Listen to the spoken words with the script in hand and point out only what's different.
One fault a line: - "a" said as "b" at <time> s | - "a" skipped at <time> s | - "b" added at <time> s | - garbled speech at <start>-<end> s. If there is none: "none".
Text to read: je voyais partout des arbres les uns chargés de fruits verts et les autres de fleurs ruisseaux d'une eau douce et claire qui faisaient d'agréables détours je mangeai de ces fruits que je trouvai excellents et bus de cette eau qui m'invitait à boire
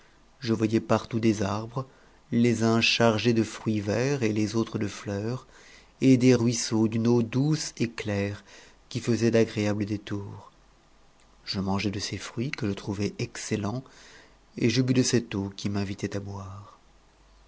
- "et des" added at 6.0 s
- "je" added at 14.7 s